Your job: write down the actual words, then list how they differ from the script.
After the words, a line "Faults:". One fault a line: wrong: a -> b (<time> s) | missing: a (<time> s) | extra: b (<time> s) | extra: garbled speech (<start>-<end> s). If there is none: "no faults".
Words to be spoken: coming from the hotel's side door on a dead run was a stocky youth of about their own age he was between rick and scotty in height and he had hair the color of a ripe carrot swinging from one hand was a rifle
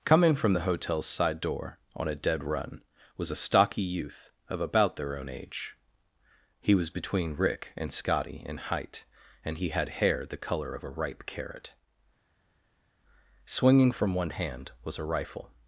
coming from the hotel's side door on a dead run was a stocky youth of about their own age he was between rick and scotty in height and he had hair the color of a ripe carrot swinging from one hand was a rifle
Faults:
no faults